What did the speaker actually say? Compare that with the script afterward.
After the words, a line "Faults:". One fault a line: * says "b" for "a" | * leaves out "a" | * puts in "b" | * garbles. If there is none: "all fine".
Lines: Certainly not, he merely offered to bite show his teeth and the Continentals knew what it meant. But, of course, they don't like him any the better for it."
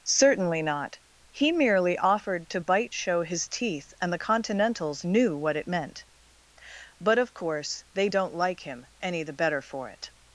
Certainly not, he merely offered to bite show his teeth and the Continentals knew what it meant. But, of course, they don't like him any the better for it."
Faults:
all fine